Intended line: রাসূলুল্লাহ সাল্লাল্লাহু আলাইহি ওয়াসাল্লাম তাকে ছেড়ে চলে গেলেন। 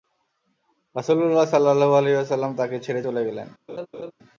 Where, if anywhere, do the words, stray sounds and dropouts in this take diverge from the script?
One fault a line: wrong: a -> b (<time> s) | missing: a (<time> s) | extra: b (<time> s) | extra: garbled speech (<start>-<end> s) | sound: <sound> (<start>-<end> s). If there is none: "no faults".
sound: laugh (3.7-4.1 s)